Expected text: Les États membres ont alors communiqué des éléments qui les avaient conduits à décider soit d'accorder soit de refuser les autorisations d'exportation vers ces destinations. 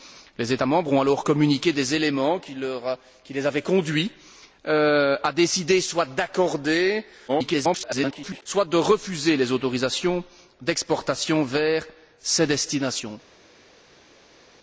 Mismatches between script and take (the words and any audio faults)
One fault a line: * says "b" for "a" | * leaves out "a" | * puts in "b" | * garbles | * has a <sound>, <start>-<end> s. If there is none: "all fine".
* garbles